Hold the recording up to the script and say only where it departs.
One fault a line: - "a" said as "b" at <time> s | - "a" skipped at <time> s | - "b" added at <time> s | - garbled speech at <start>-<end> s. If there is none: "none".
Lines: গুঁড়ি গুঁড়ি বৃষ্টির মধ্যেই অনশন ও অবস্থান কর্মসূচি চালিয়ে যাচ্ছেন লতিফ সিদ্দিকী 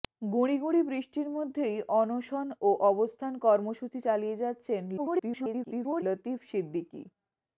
- garbled speech at 5.0-6.0 s